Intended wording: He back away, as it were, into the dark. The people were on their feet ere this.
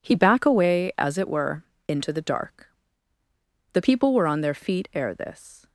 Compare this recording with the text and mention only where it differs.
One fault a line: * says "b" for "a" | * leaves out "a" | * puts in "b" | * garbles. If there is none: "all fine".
all fine